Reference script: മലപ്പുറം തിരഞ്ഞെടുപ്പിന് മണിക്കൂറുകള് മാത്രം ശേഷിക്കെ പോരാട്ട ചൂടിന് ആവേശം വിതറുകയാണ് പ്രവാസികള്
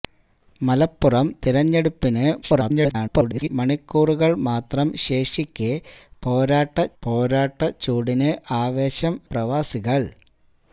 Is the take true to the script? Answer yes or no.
no